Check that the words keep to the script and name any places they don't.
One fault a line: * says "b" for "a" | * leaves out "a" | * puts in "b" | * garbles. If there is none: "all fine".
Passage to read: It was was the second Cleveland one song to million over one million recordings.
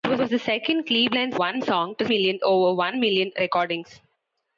all fine